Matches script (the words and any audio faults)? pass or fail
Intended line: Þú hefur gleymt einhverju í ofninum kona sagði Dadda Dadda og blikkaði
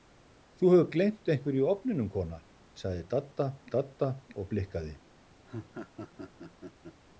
fail